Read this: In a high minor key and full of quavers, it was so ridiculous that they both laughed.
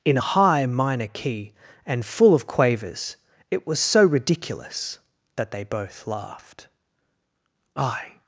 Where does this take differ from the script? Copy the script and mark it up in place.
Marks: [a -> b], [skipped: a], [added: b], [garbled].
In a high minor key and full of quavers, it was so ridiculous that they both laughed. [added: I]